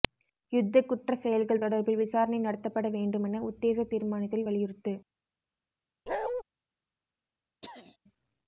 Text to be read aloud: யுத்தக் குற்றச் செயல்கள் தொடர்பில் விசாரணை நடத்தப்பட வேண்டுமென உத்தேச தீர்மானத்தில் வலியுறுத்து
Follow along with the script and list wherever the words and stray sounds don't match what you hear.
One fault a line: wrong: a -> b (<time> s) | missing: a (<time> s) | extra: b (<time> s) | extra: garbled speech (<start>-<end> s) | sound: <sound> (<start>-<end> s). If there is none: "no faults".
sound: bark (6.1-6.4 s)
sound: throat clearing (7.6-8.0 s)